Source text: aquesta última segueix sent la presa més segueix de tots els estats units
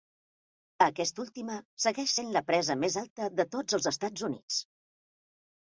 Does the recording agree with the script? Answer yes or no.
no